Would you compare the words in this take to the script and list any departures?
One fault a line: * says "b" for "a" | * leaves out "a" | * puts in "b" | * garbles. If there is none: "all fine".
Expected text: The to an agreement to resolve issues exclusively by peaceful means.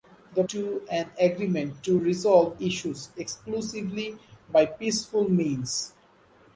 all fine